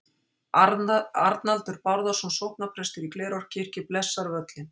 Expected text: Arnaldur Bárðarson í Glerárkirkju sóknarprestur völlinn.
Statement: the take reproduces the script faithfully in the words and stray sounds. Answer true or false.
false